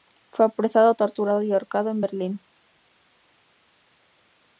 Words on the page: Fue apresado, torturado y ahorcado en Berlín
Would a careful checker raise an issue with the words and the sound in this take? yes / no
no